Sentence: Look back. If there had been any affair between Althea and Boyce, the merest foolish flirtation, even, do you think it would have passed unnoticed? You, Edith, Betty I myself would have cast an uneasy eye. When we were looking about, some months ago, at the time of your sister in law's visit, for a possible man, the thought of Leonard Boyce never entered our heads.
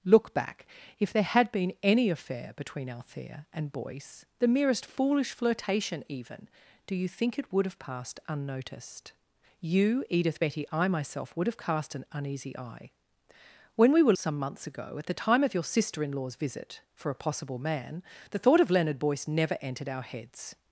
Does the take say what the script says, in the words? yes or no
no